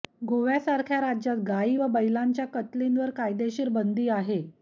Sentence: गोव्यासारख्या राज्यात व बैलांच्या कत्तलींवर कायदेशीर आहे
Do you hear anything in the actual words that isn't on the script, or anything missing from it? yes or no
yes